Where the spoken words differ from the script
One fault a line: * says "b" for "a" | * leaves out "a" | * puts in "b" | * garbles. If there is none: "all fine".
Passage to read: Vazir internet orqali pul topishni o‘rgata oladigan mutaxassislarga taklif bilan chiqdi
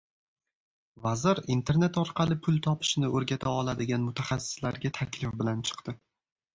all fine